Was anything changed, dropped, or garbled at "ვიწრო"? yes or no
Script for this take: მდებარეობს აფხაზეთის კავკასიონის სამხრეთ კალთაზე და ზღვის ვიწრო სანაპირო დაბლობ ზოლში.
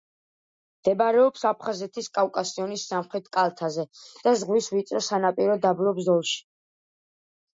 no